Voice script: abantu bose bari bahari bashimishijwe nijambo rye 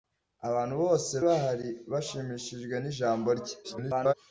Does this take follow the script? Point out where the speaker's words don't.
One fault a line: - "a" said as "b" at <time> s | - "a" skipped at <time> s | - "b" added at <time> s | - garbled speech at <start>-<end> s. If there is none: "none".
- "bari" skipped at 1.1 s
- garbled speech at 3.6-4.1 s